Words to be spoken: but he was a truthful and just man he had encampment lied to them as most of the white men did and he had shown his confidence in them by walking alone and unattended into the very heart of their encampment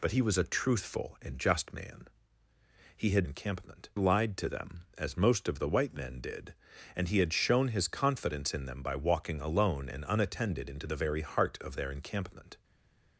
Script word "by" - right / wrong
right